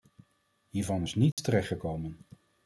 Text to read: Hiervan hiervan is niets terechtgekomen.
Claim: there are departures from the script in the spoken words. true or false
true